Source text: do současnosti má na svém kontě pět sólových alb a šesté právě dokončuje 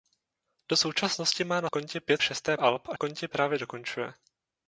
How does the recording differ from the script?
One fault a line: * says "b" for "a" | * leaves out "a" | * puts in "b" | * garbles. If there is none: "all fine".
* leaves out "svém"
* says "šesté" for "sólových"
* says "kontě" for "šesté"